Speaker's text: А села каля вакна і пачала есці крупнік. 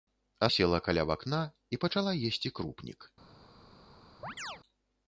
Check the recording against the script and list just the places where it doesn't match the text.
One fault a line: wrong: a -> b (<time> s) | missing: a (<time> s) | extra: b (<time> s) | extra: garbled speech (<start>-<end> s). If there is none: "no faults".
no faults